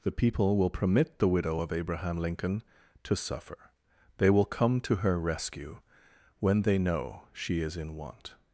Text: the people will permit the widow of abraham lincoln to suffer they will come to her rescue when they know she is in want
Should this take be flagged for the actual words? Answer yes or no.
no